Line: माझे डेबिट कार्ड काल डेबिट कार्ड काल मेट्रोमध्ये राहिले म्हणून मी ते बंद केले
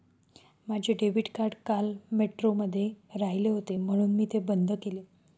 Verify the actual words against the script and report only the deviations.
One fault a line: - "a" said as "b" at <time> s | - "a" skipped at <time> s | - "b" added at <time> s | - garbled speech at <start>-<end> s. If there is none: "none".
- "डेबिट कार्ड काल" skipped at 1.9 s
- "होते" added at 3.5 s